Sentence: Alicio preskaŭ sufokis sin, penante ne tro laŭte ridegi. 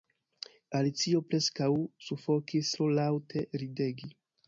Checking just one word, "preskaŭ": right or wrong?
right